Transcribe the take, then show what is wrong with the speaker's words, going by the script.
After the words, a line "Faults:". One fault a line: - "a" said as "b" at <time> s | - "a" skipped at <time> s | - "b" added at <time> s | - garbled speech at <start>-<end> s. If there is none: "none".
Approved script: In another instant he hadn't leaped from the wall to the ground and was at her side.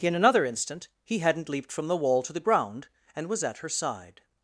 In another instant he hadn't leaped from the wall to the ground and was at her side.
Faults:
none